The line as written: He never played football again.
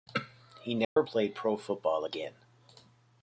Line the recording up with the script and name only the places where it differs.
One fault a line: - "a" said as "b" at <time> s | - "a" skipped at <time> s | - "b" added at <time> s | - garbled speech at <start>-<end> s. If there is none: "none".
- "pro" added at 1.3 s